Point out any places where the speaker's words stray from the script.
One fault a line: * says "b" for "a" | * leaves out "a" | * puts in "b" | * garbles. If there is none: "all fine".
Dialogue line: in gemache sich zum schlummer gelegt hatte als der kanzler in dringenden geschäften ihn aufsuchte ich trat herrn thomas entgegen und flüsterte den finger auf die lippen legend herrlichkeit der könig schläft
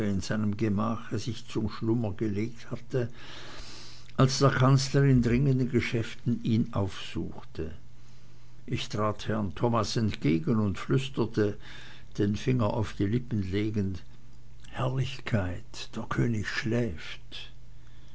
* puts in "seinem"